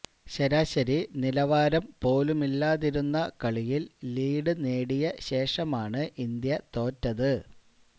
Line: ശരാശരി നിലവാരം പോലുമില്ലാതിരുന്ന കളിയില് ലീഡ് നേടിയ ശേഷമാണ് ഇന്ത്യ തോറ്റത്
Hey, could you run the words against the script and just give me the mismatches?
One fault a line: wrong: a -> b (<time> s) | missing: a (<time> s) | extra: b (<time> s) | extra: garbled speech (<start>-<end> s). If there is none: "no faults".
no faults